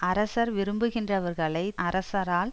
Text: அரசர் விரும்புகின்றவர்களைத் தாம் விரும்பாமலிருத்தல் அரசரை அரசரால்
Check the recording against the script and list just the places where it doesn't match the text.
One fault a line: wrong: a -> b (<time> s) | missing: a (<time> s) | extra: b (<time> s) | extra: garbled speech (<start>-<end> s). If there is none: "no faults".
missing: தாம் விரும்பாமலிருத்தல் அரசரை (1.8 s)